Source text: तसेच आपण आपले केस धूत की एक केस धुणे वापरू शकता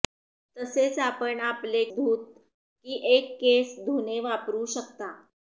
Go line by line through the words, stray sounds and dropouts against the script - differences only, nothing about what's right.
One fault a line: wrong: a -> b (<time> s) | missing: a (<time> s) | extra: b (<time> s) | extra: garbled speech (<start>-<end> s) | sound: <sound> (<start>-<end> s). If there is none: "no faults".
missing: केस (1.8 s)